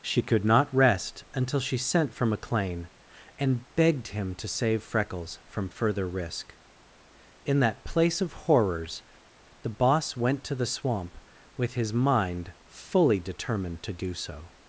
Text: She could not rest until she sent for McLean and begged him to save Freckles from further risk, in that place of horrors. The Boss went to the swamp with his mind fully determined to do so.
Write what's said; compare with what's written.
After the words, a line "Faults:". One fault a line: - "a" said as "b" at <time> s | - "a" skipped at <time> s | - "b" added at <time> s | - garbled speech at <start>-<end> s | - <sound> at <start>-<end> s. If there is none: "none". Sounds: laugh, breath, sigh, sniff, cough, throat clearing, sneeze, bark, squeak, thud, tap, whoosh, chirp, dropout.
She could not rest until she sent for McLean and begged him to save Freckles from further risk, in that place of horrors. The Boss went to the swamp with his mind fully determined to do so.
Faults:
none